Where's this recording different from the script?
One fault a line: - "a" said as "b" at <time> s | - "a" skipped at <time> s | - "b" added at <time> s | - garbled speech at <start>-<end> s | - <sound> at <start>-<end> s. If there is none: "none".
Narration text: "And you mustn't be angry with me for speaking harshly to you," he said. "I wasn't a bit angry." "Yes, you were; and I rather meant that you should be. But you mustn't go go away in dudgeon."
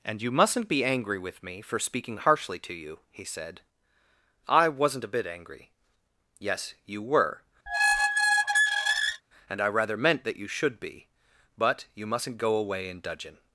- squeak at 7.7-9.2 s
- "go" skipped at 12.6 s